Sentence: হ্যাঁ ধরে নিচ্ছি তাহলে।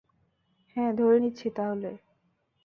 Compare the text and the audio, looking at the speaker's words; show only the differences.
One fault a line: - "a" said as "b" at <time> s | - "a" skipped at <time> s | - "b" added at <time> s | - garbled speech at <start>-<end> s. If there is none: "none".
none